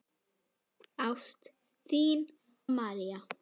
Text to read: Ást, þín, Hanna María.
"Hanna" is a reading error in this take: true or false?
true